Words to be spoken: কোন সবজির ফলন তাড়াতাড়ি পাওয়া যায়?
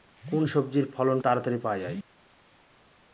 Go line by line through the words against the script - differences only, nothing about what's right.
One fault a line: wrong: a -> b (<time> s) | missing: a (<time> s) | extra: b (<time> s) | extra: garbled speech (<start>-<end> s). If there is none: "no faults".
no faults